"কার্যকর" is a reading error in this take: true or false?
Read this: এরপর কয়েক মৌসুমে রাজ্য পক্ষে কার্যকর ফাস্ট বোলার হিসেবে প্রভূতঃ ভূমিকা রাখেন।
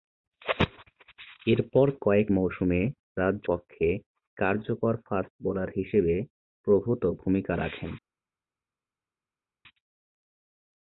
false